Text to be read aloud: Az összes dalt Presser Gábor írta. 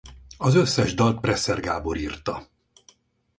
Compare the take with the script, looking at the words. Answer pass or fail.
pass